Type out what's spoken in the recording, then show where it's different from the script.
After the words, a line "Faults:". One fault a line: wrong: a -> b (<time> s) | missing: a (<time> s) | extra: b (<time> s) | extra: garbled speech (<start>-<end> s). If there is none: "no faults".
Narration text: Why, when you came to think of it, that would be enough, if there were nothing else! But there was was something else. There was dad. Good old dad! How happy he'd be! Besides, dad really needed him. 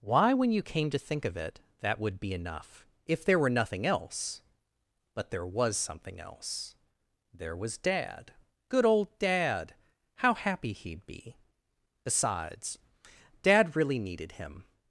Why, when you came to think of it, that would be enough, if there were nothing else! But there was something else. There was dad. Good old dad! How happy he'd be! Besides, dad really needed him.
Faults:
missing: was (5.8 s)